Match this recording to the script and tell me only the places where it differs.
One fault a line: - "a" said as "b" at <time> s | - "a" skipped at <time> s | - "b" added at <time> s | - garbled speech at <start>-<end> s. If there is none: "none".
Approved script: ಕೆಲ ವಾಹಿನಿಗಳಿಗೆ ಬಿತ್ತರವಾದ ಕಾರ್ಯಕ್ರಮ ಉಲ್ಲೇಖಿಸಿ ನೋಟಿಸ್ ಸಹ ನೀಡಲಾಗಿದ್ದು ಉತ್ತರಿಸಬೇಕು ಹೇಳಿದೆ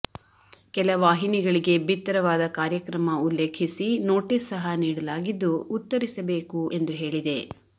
- "ಎಂದು" added at 6.7 s